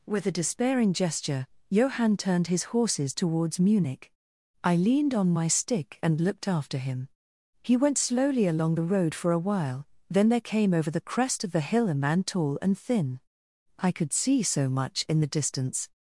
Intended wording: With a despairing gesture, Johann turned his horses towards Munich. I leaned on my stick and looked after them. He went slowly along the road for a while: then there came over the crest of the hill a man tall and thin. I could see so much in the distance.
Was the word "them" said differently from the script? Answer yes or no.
yes